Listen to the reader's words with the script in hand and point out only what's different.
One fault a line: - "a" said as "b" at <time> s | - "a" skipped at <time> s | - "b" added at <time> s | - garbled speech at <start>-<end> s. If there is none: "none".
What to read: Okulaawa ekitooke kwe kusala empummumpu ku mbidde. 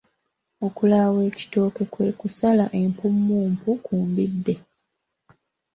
none